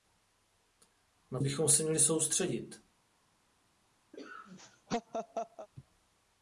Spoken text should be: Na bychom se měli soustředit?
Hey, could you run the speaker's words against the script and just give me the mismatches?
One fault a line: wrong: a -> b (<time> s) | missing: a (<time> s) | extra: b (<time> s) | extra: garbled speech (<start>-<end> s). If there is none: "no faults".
no faults